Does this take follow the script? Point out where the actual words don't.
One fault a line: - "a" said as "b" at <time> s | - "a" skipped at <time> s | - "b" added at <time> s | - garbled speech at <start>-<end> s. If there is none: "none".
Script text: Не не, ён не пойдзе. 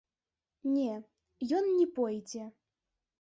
- "не" skipped at 0.9 s